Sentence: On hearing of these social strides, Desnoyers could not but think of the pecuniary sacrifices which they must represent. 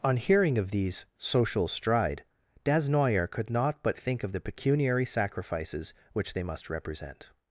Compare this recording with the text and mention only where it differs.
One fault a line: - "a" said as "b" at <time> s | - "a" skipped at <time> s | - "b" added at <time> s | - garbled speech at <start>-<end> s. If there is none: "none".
- "strides" said as "stride" at 1.7 s